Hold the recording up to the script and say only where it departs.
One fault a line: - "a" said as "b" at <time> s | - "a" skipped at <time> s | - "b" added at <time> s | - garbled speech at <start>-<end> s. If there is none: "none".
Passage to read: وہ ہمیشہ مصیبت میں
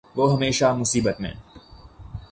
none